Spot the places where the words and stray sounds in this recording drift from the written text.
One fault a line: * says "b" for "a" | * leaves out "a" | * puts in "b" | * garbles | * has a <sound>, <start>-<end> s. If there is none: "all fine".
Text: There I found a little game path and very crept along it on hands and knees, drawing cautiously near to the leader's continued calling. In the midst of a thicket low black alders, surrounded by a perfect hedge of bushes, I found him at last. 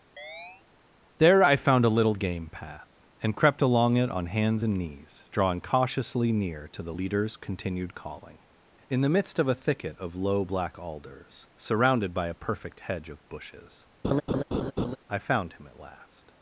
* has a chirp, 0.2-0.6 s
* leaves out "very"
* puts in "of"
* has a laugh, 14.0-15.0 s